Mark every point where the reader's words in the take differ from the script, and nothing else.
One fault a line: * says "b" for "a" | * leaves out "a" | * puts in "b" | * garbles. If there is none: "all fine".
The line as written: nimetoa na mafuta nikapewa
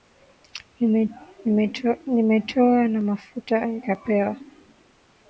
all fine